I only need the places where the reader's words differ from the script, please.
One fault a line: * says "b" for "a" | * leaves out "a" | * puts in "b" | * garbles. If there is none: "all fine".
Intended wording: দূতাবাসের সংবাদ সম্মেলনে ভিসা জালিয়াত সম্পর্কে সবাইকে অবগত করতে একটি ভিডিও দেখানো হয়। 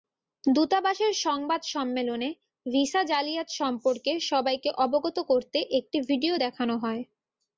all fine